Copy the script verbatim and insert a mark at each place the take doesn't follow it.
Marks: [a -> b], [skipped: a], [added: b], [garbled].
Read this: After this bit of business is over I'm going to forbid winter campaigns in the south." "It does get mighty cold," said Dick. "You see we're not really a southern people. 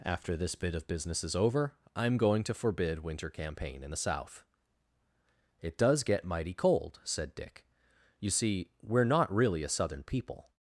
After this bit of business is over I'm going to forbid winter [campaigns -> campaign] in the south." "It does get mighty cold," said Dick. "You see we're not really a southern people.